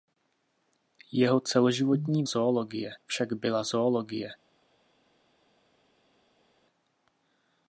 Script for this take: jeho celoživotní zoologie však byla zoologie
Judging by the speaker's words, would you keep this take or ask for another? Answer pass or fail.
pass